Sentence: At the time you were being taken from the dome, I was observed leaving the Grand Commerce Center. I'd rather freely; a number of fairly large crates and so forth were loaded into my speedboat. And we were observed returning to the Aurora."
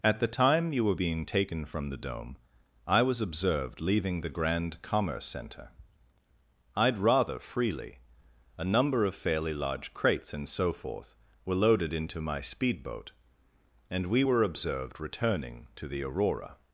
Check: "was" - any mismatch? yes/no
no